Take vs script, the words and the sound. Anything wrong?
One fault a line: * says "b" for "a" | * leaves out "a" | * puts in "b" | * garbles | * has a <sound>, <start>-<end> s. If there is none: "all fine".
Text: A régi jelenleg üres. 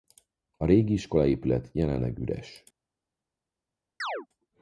* puts in "iskolaépület"
* has a chirp, 4.0-4.3 s